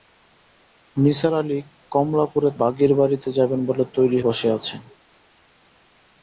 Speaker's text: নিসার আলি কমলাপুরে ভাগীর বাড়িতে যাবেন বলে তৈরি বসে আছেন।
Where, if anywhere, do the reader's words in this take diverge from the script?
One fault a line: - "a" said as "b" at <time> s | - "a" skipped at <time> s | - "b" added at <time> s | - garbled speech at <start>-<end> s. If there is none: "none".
none